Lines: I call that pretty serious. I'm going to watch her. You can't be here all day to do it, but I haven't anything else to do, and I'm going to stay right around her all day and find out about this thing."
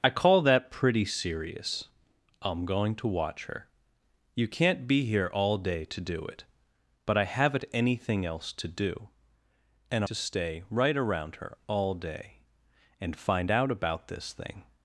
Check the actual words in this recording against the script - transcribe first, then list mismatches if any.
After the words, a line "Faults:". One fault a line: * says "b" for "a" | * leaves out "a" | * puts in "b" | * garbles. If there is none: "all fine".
I call that pretty serious. I'm going to watch her. You can't be here all day to do it, but I haven't anything else to do, and To stay right around her all day and find out about this thing."
Faults:
* leaves out "I'm going"